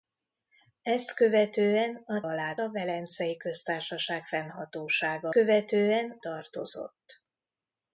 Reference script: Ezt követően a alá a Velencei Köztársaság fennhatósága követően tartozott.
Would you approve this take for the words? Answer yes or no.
yes